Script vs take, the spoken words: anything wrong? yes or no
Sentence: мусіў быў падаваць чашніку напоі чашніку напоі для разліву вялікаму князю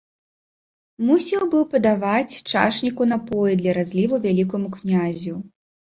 yes